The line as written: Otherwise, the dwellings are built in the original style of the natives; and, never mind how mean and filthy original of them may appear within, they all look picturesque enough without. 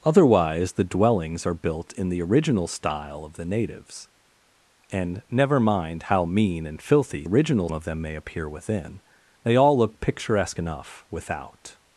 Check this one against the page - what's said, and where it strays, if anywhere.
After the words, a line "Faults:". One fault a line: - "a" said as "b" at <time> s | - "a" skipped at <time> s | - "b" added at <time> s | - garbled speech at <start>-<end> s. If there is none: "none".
Otherwise, the dwellings are built in the original style of the natives; and, never mind how mean and filthy original of them may appear within, they all look picturesque enough without.
Faults:
none